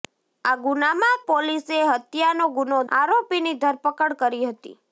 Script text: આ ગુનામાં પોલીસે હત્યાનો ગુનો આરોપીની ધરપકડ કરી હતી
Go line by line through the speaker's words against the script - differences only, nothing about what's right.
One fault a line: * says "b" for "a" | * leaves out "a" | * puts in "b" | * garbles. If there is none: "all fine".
all fine